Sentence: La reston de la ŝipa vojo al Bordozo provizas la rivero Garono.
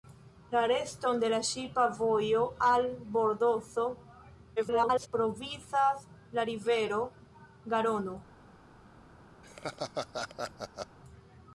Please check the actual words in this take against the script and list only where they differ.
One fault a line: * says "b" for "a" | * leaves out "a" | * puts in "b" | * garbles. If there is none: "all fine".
* garbles